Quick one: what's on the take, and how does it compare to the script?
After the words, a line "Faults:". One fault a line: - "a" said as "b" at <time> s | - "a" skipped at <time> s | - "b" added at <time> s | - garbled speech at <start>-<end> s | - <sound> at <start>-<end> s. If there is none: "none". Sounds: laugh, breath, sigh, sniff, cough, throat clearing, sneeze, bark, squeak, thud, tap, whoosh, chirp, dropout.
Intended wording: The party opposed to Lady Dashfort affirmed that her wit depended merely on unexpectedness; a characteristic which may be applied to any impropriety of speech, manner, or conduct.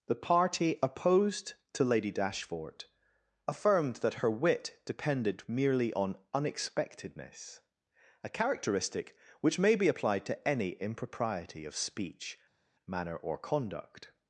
The party opposed to Lady Dashfort affirmed that her wit depended merely on unexpectedness; a characteristic which may be applied to any impropriety of speech, manner, or conduct.
Faults:
none